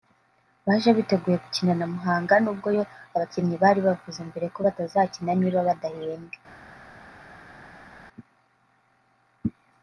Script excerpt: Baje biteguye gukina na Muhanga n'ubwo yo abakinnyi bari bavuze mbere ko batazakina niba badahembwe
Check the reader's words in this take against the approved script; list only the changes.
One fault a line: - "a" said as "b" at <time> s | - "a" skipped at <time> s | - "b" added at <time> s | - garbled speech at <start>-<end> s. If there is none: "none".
none